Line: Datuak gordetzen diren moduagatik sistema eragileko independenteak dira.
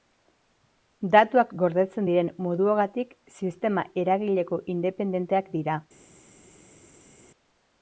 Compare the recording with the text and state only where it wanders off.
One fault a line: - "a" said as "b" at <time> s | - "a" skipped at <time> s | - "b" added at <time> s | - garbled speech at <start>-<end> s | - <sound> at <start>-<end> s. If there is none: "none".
none